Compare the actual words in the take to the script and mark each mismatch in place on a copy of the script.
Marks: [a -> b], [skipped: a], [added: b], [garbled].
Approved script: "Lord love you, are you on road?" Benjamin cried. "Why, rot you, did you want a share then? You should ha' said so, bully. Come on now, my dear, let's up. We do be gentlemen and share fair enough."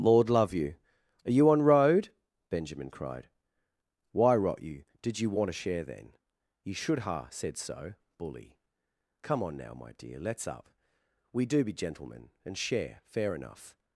"Lord love you, are you on road?" Benjamin cried. "Why, rot you, did you want a share then? You should ha' said so, bully. Come on now, my dear, let's up. We do be gentlemen and share fair enough."